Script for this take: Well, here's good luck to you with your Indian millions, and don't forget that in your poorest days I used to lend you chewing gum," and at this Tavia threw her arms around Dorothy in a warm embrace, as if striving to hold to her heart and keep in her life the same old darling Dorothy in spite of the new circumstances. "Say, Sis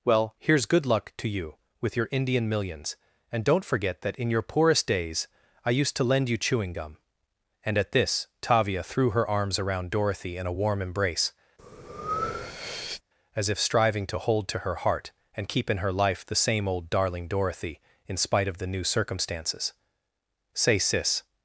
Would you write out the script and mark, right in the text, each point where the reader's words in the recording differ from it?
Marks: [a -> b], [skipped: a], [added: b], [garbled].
Well, here's good luck to you with your Indian millions, and don't forget that in your poorest days I used to lend you chewing gum," and at this Tavia threw her arms around Dorothy in a warm embrace, as if striving to hold to her heart and keep in her life the same old darling Dorothy in spite of the new circumstances. "Say, Sis